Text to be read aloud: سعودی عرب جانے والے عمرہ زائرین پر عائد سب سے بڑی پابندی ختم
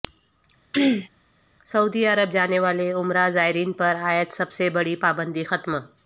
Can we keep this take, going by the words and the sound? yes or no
no